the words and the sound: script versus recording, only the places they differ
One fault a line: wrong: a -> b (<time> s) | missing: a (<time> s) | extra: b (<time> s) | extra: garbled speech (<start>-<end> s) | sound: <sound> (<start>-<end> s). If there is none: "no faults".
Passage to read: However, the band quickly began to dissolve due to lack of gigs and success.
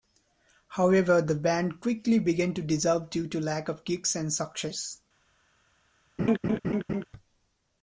sound: laugh (6.2-7.1 s)